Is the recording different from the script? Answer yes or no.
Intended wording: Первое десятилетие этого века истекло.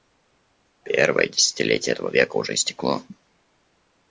yes